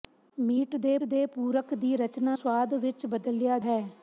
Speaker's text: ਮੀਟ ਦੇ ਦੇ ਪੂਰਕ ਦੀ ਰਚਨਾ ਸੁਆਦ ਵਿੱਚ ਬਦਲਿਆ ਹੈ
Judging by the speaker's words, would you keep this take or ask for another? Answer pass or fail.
pass